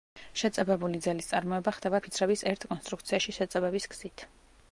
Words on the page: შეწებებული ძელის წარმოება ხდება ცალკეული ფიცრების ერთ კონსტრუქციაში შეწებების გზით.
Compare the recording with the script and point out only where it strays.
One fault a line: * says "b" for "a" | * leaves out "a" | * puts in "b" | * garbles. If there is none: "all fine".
* leaves out "ცალკეული"